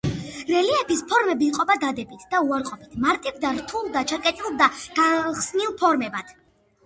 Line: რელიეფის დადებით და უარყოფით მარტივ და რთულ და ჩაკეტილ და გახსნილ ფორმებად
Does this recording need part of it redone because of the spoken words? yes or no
yes